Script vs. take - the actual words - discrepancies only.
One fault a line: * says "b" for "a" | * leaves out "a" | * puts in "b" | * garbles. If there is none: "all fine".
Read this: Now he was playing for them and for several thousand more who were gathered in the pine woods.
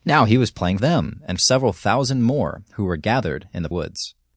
* leaves out "for"
* leaves out "for"
* leaves out "pine"